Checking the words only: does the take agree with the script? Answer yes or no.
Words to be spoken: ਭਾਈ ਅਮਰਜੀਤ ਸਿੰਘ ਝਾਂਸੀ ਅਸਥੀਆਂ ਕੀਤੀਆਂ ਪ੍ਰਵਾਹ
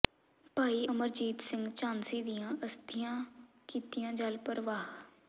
no